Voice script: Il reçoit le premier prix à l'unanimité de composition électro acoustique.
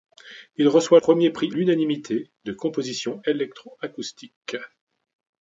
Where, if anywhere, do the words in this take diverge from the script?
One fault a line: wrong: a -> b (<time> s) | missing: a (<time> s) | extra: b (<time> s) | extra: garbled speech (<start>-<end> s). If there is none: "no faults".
missing: le (1.0 s)
missing: à (1.5 s)